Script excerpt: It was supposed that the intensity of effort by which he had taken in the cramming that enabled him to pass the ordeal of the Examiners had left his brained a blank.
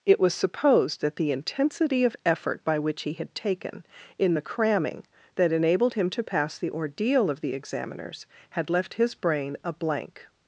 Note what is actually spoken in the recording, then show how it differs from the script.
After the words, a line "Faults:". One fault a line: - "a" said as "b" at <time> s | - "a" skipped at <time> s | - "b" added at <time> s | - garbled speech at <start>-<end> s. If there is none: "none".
It was supposed that the intensity of effort by which he had taken in the cramming that enabled him to pass the ordeal of the Examiners had left his brain a blank.
Faults:
- "brained" said as "brain" at 9.1 s